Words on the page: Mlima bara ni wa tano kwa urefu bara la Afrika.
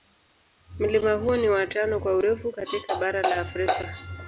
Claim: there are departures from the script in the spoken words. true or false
true